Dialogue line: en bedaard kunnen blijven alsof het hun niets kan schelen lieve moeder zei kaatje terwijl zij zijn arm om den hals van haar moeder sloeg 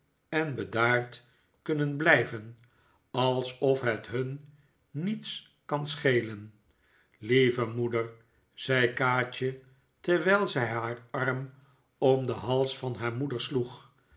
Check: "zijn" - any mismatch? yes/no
yes